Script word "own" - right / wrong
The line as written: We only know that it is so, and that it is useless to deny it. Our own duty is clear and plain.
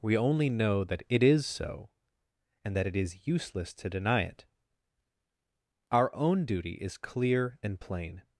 right